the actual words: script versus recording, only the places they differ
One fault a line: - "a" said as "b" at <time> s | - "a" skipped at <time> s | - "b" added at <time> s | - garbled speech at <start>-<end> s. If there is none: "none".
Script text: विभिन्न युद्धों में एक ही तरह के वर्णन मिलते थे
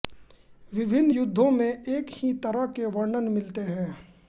- "थे" said as "हैं" at 3.6 s